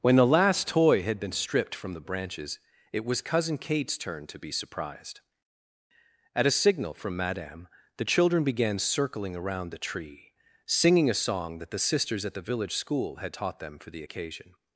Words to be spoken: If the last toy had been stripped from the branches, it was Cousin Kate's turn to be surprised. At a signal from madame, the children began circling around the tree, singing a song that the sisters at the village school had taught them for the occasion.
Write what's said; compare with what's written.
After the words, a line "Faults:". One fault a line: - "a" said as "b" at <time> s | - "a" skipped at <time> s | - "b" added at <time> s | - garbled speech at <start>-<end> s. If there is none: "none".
When the last toy had been stripped from the branches, it was Cousin Kate's turn to be surprised. At a signal from madame, the children began circling around the tree, singing a song that the sisters at the village school had taught them for the occasion.
Faults:
- "If" said as "When" at 0.0 s